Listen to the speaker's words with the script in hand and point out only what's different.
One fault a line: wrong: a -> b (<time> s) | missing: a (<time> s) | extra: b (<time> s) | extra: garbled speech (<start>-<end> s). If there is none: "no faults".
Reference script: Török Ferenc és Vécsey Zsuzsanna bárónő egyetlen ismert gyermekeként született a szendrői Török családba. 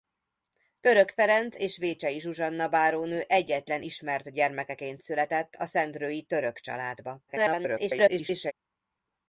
extra: garbled speech (7.3-8.5 s)